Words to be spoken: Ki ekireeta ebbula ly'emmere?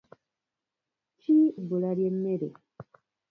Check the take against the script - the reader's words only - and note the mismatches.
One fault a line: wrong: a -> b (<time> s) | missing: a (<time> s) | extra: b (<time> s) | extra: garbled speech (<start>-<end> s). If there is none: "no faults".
missing: ekireeta (1.4 s)